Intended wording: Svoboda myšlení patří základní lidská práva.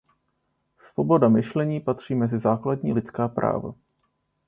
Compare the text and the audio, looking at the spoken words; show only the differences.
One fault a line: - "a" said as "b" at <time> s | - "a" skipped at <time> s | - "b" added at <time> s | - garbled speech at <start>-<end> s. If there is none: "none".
- "mezi" added at 2.1 s